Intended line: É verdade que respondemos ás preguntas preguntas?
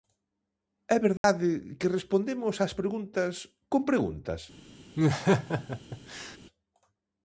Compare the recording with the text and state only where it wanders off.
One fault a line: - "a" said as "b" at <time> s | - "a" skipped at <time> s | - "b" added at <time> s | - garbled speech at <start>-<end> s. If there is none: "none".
- "con" added at 3.7 s